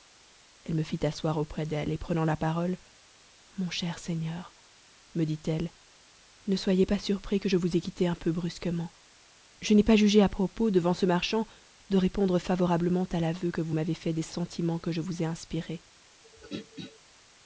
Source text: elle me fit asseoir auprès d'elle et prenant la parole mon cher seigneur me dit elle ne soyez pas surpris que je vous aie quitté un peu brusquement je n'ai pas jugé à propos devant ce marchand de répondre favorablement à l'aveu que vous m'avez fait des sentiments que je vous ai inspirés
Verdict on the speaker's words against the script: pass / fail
pass